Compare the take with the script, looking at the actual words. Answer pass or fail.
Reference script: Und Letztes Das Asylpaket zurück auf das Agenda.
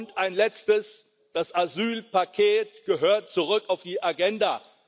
fail